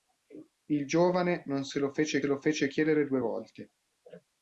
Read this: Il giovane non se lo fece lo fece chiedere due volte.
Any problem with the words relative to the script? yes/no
no